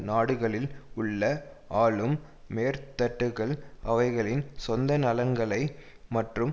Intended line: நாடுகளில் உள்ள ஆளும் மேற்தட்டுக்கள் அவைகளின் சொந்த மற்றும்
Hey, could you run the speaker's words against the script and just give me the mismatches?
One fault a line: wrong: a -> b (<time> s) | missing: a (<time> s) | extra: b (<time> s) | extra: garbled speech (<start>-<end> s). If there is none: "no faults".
extra: நலன்களை (5.0 s)